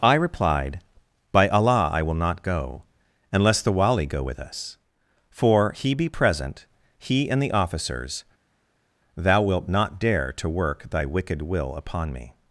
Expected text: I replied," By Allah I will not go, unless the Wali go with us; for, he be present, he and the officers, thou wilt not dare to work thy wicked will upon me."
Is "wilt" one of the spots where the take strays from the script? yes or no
no